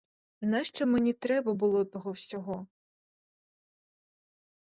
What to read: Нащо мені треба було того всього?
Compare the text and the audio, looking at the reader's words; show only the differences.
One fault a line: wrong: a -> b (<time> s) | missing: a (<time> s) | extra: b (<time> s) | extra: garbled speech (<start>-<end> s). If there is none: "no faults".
no faults